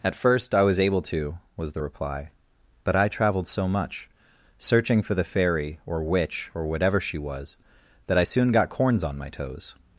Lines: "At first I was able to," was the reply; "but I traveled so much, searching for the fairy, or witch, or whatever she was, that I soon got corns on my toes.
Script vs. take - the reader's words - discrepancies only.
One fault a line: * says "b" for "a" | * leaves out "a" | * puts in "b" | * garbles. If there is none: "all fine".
all fine